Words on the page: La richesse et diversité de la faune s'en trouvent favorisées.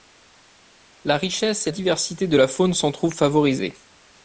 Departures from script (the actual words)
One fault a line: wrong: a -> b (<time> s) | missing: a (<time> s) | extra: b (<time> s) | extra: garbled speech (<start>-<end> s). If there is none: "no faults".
no faults